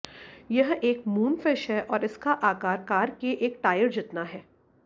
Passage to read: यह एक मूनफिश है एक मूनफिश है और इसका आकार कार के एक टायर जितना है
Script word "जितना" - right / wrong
right